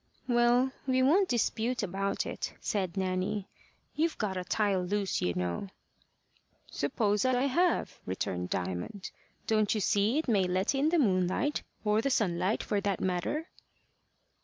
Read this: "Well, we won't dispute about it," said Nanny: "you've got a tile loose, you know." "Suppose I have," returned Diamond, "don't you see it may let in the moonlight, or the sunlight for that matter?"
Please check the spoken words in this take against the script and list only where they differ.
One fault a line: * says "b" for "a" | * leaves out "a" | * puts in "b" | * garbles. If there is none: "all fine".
* puts in "I"